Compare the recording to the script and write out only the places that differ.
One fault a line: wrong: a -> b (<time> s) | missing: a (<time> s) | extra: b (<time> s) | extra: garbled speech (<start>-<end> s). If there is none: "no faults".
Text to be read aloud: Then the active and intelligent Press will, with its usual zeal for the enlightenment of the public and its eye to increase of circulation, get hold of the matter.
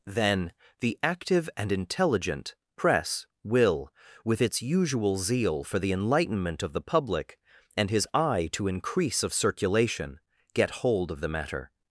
wrong: its -> his (7.9 s)